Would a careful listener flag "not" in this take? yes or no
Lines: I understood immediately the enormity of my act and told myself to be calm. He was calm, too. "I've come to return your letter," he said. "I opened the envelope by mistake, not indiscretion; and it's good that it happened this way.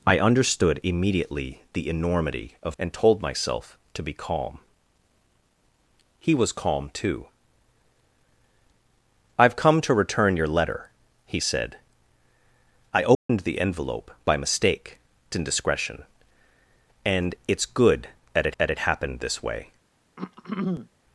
yes